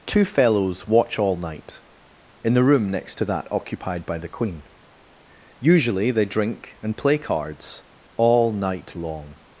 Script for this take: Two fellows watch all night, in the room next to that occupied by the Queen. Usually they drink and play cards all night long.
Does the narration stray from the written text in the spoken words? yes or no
no